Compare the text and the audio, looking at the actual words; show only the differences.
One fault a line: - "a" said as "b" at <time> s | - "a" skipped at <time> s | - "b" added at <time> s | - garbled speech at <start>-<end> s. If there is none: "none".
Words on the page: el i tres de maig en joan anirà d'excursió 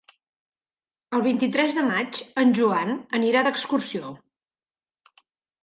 - "vint" added at 1.3 s